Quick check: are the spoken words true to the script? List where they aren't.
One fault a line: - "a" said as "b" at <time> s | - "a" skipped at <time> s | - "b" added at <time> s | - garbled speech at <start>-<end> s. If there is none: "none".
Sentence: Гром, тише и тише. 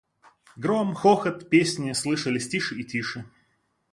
- "хохот песни слышались" added at 0.9 s